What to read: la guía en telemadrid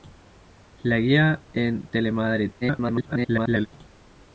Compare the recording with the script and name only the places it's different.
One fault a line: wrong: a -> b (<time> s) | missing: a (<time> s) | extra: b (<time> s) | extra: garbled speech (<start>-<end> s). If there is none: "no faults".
extra: garbled speech (2.6-3.7 s)